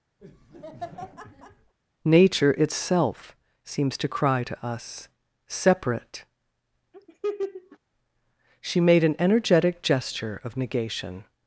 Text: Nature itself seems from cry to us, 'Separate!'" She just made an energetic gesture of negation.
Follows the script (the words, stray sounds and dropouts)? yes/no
no